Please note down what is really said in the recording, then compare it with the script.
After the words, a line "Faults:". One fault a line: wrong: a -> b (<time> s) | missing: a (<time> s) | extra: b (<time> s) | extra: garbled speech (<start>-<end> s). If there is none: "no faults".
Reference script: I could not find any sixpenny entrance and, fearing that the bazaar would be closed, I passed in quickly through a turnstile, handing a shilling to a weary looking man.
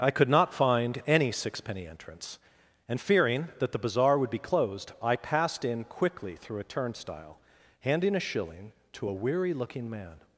I could not find any sixpenny entrance and, fearing that the bazaar would be closed, I passed in quickly through a turnstile, handing a shilling to a weary looking man.
Faults:
no faults